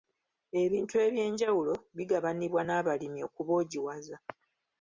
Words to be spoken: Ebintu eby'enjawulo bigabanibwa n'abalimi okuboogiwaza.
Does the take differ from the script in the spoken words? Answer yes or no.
no